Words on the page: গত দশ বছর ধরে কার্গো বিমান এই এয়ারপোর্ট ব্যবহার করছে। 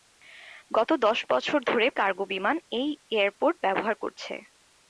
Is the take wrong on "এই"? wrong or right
right